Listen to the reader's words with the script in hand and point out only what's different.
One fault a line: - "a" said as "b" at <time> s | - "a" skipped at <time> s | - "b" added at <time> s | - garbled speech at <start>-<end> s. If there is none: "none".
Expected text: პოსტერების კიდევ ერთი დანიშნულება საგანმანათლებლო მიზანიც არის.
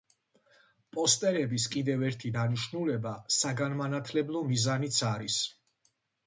none